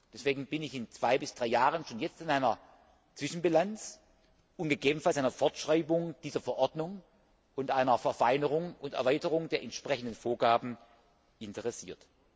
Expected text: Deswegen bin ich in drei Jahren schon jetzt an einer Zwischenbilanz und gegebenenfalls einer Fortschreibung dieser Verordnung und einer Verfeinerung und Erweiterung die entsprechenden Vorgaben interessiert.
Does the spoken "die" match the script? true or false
false